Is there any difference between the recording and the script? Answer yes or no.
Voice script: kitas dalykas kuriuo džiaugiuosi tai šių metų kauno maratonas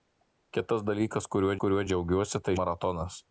yes